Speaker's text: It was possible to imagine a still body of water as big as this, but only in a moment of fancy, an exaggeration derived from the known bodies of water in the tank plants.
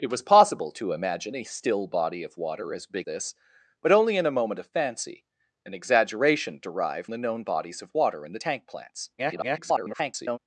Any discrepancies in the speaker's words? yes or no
yes